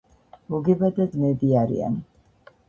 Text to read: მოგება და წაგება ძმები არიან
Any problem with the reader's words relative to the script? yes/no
yes